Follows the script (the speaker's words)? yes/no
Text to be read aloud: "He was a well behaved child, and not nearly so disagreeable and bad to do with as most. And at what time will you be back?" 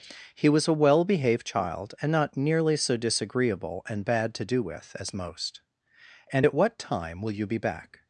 yes